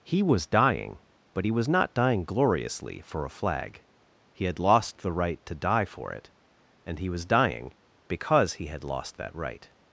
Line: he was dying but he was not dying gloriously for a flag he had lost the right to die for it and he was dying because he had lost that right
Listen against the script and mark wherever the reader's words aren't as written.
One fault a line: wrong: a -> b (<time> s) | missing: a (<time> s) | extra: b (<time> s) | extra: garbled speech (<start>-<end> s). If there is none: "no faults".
no faults